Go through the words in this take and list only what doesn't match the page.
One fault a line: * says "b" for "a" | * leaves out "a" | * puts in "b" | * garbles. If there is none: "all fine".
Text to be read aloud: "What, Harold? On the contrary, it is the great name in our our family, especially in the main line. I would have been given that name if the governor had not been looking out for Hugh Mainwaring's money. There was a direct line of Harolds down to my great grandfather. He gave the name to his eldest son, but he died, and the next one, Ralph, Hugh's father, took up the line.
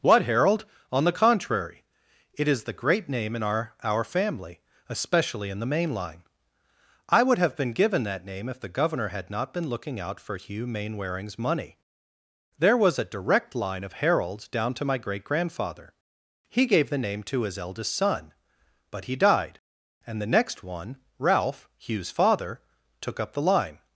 all fine